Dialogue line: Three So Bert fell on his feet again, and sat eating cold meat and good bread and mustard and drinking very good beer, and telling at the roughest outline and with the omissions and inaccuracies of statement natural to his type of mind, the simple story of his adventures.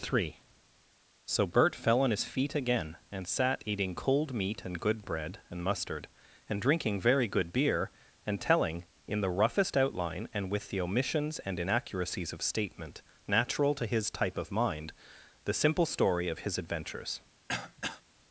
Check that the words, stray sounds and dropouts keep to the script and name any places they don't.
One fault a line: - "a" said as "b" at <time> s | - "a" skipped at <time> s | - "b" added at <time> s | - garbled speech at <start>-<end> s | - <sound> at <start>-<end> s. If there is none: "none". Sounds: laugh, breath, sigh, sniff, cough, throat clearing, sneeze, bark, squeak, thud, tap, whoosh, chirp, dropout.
- "at" said as "in" at 9.1 s
- throat clearing at 17.5-18.0 s